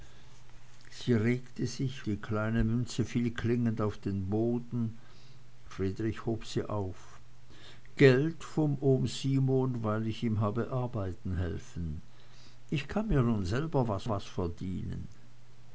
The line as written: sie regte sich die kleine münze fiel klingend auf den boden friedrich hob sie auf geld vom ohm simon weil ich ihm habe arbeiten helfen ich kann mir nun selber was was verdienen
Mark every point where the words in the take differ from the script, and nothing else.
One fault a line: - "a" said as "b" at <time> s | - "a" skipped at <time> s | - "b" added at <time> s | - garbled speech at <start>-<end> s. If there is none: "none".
none